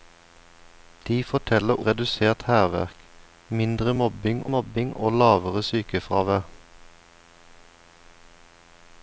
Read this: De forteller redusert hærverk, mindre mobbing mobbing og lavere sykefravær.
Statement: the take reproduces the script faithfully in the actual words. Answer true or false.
true